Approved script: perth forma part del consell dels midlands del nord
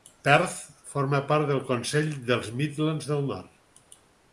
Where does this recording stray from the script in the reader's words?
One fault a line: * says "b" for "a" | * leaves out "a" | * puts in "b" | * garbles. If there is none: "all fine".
all fine